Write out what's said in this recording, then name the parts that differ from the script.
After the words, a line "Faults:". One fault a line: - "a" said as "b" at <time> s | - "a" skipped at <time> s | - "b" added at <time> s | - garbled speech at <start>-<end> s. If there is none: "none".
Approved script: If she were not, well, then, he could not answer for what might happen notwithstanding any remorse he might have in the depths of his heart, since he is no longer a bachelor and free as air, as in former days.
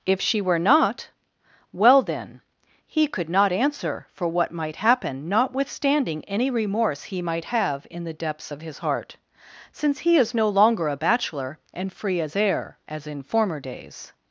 If she were not, well, then, he could not answer for what might happen notwithstanding any remorse he might have in the depths of his heart, since he is no longer a bachelor and free as air, as in former days.
Faults:
none